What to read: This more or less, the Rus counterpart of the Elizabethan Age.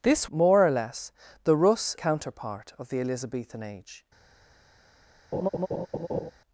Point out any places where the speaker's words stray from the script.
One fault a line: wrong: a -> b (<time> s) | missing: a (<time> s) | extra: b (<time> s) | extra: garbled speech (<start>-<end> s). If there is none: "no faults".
no faults